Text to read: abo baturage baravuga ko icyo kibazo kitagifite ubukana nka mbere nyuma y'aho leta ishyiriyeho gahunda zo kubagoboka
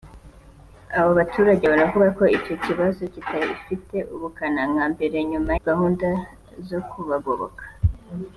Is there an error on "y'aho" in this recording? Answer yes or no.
yes